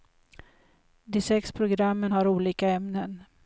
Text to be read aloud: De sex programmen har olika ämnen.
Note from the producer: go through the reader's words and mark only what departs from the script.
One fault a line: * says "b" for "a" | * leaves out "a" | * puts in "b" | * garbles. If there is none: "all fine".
all fine